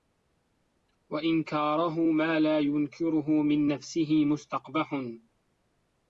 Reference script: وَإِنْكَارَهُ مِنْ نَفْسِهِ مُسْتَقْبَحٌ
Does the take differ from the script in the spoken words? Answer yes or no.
yes